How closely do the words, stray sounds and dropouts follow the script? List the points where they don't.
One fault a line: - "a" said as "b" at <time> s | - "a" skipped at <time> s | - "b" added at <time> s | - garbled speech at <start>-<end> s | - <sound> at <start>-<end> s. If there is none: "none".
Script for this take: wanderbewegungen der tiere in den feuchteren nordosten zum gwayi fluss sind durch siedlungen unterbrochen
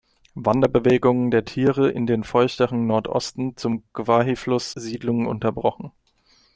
- "sind durch" skipped at 4.7 s